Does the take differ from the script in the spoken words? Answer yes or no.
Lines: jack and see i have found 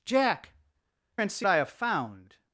no